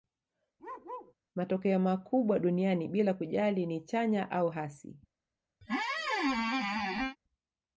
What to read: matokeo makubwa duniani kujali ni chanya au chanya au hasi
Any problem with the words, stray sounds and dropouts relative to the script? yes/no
yes